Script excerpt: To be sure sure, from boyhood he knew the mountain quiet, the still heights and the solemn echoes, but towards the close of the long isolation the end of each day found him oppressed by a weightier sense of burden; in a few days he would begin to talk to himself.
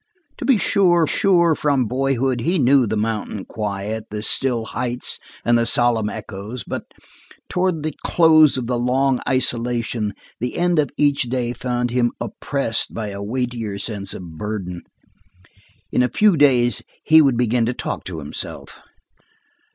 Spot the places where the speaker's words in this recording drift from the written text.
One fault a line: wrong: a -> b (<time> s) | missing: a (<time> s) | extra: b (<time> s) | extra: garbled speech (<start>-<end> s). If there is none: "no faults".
no faults